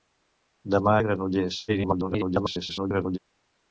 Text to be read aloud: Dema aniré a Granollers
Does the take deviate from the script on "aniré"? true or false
true